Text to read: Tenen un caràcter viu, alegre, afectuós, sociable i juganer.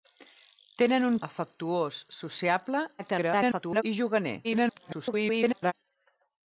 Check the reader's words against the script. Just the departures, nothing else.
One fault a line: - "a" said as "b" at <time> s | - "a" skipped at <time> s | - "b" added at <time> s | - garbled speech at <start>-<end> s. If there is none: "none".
- "caràcter viu alegre" skipped at 1.2 s
- garbled speech at 3.0-3.8 s
- garbled speech at 4.4-5.7 s